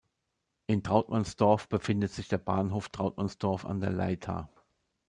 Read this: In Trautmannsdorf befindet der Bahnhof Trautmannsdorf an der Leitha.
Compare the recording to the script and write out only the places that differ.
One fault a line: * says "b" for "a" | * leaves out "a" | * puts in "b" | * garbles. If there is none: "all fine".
* puts in "sich"